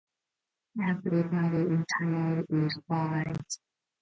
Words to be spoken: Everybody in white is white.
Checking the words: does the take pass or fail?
fail